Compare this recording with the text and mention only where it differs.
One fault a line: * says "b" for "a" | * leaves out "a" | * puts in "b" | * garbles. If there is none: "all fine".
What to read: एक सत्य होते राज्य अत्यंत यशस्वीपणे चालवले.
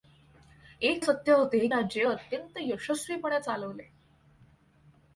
all fine